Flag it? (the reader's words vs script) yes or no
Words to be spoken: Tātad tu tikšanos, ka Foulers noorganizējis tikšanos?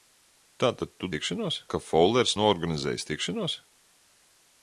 no